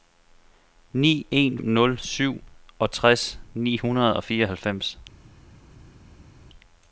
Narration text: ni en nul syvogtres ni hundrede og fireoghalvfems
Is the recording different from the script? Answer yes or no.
no